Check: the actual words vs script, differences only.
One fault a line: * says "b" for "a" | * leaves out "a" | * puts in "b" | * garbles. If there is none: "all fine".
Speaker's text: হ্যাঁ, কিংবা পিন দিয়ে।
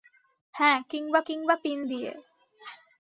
* puts in "কিংবা"